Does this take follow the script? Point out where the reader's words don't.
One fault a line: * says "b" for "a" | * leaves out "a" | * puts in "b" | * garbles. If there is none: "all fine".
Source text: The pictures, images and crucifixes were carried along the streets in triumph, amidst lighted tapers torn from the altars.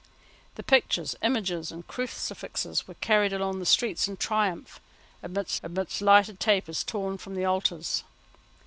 * puts in "amidst"